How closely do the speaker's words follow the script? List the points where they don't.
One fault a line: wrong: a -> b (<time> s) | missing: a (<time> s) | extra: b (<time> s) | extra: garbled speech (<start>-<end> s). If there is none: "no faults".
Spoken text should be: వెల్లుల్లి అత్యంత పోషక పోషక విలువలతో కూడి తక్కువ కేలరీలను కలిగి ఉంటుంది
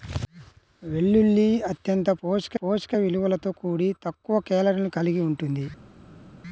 no faults